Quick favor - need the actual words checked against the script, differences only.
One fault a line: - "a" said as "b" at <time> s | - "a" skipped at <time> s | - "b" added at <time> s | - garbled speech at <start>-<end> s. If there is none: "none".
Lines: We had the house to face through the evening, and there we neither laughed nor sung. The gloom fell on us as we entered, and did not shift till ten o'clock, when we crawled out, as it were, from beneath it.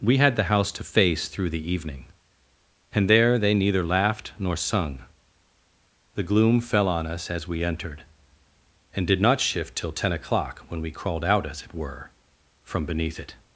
- "we" said as "they" at 3.4 s